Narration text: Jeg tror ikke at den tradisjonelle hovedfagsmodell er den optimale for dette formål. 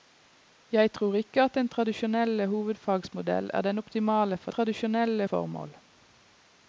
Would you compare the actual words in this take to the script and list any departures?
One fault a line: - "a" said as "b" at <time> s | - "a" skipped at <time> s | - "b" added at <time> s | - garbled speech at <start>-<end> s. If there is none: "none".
- "dette" said as "tradisjonelle" at 4.5 s